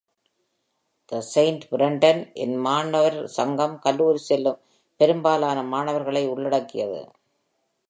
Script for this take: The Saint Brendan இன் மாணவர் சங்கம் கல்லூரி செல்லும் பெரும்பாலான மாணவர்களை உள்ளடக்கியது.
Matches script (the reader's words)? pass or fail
pass